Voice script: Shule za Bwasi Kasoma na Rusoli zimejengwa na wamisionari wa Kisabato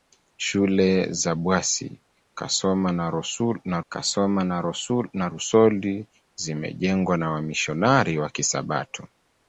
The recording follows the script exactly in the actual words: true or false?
false